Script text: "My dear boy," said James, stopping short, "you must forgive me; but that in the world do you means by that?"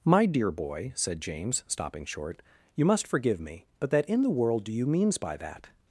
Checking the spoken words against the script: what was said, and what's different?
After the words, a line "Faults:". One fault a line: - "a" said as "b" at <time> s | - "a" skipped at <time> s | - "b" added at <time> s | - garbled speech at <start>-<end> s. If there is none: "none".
"My dear boy," said James, stopping short, "you must forgive me; but that in the world do you means by that?"
Faults:
none